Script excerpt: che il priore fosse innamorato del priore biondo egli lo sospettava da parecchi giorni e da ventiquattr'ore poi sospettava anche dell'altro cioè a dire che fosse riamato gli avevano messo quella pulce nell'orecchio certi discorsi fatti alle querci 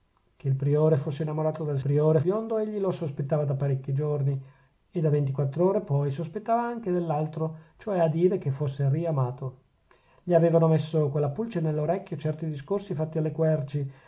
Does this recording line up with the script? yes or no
yes